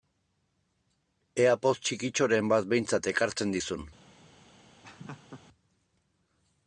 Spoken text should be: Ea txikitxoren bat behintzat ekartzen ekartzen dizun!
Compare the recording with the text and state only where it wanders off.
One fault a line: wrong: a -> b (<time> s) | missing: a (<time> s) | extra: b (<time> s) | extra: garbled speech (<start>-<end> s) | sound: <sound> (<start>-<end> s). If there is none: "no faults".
extra: poz (1.6 s)
missing: ekartzen (3.5 s)
sound: laugh (4.8-5.4 s)